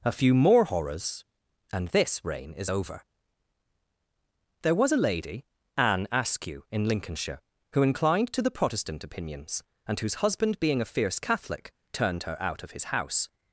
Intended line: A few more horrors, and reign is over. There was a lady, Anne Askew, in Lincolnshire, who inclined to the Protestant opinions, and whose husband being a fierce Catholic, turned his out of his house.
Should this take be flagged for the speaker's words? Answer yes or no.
yes